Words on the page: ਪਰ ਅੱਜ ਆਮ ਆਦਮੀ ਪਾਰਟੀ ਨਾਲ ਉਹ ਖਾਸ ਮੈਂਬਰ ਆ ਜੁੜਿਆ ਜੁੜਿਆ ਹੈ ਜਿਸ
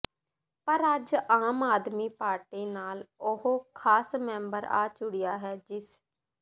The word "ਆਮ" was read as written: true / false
true